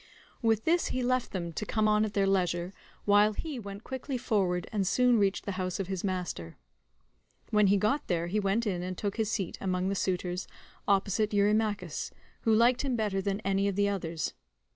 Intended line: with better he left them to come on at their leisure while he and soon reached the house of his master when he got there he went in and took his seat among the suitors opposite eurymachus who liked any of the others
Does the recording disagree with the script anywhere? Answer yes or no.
yes